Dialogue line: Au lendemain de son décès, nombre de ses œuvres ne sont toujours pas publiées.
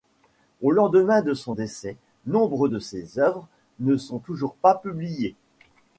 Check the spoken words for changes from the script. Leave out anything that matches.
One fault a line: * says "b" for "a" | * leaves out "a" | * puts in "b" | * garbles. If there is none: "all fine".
all fine